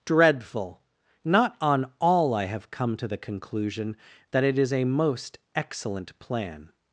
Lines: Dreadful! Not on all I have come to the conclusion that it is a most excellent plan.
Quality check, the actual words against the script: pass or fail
pass